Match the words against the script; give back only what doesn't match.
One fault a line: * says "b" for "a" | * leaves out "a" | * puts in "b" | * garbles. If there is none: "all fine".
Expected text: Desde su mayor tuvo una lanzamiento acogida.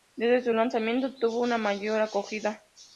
* says "lanzamiento" for "mayor"
* says "mayor" for "lanzamiento"